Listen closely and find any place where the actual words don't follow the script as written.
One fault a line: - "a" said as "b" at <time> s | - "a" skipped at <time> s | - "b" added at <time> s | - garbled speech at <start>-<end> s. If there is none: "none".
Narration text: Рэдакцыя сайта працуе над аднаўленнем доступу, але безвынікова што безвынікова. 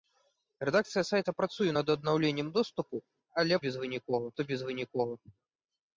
none